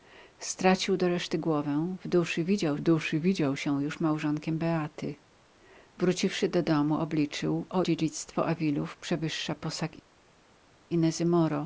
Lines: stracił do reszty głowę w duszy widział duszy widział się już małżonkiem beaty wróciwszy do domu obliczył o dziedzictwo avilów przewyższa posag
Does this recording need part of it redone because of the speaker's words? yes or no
no